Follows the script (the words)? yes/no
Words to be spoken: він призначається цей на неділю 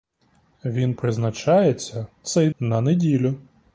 yes